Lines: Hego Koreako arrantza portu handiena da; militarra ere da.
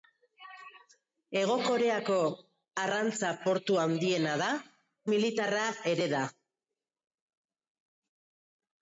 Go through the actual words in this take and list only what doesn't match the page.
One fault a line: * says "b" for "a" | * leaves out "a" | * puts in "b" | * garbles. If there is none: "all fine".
all fine